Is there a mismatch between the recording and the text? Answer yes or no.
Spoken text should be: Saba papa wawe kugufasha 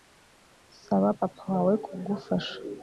no